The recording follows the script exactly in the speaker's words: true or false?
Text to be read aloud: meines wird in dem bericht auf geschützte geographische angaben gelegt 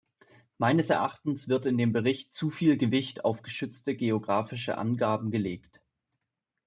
false